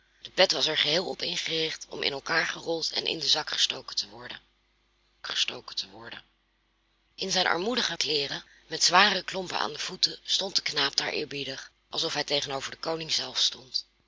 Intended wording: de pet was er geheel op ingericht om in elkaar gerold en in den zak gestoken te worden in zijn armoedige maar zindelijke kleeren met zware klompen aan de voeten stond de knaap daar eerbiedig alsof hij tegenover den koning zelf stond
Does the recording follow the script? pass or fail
fail